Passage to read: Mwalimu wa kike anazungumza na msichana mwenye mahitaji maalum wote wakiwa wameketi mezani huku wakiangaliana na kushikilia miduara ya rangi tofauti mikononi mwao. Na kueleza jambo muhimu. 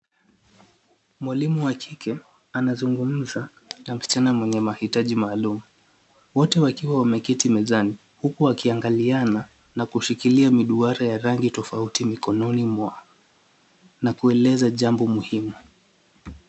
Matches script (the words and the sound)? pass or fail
pass